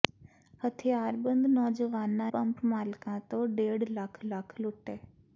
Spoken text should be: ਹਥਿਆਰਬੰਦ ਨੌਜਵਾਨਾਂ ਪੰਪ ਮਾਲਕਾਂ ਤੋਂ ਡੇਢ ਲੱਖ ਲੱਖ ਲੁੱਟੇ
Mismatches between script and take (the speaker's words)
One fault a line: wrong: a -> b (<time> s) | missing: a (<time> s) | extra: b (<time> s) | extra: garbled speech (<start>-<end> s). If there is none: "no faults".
no faults